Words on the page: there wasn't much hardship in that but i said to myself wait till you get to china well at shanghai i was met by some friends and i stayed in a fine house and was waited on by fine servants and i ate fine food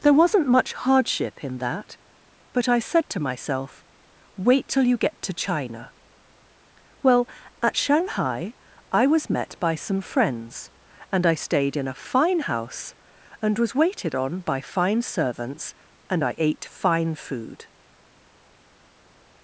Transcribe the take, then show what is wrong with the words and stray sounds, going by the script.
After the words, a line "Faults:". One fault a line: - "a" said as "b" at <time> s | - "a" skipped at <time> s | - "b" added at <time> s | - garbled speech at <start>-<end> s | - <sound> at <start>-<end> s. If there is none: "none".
there wasn't much hardship in that but i said to myself wait till you get to china well at shanghai i was met by some friends and i stayed in a fine house and was waited on by fine servants and i ate fine food
Faults:
none